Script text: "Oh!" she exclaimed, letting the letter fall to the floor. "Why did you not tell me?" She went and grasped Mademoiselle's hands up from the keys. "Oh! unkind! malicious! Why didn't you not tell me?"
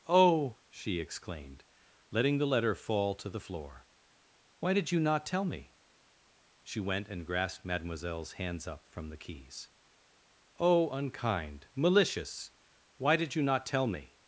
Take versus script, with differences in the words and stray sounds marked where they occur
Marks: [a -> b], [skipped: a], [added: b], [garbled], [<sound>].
"Oh!" she exclaimed, letting the letter fall to the floor. "Why did you not tell me?" She went and grasped Mademoiselle's hands up from the keys. "Oh! unkind! malicious! Why [didn't -> did] you not tell me?"